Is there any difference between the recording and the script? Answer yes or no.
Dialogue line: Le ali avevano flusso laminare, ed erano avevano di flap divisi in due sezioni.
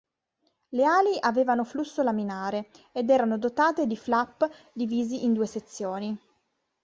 yes